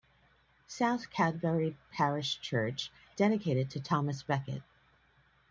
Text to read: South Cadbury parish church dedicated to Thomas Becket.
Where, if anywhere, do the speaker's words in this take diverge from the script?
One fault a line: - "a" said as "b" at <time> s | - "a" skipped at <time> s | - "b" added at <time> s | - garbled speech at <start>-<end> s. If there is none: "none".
none